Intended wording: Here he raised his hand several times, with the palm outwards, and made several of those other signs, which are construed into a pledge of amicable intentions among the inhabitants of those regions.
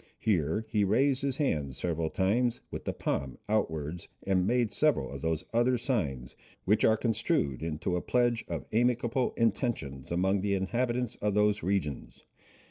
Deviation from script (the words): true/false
false